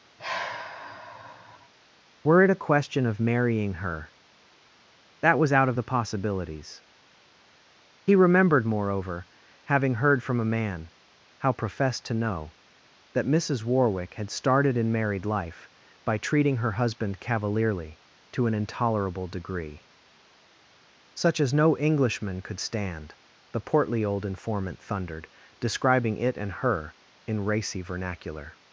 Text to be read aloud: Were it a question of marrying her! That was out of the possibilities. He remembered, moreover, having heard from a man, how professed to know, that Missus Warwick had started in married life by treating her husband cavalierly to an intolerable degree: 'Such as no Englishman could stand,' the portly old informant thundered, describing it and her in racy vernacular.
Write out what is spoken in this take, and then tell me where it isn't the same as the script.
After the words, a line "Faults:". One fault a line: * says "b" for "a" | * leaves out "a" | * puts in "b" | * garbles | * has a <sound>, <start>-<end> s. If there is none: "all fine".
Were it a question of marrying her! That was out of the possibilities. He remembered, moreover, having heard from a man, how professed to know, that Missus Warwick had started in married life by treating her husband cavalierly to an intolerable degree: 'Such as no Englishman could stand,' the portly old informant thundered, describing it and her in racy vernacular.
Faults:
* has a sigh, 0.2-1.7 s